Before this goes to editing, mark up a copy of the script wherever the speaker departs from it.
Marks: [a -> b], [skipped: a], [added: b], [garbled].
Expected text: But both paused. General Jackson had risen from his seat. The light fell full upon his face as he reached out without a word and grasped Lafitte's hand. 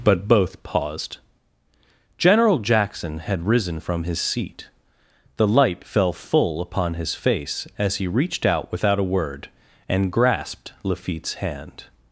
But both paused. General Jackson had risen from his seat. The light fell full upon his face as he reached out without a word and grasped Lafitte's hand.